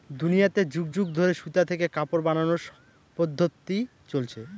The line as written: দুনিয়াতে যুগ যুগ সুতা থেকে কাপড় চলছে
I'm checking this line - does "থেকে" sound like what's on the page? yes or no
yes